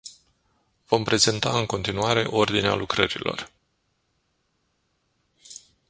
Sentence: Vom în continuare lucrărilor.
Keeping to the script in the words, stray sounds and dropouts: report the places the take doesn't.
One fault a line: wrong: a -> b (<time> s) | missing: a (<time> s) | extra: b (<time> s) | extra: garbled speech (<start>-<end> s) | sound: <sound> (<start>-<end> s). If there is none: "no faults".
extra: prezenta (1.0 s)
extra: ordinea (2.2 s)